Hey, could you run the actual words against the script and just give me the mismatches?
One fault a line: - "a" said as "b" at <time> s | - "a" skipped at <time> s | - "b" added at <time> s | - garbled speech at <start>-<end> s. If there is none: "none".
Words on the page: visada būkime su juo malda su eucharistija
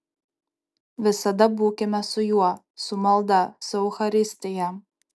- "su" added at 2.9 s